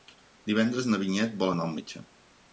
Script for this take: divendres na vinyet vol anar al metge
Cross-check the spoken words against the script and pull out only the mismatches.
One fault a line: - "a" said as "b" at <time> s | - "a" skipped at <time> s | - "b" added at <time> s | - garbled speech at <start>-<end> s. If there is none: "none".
none